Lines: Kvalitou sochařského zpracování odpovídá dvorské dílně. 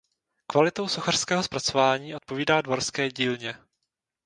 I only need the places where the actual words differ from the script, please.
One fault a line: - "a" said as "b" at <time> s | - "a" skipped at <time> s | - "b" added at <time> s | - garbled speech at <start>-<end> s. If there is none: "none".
none